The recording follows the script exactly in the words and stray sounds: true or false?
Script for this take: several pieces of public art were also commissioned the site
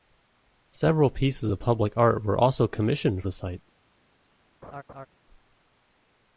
false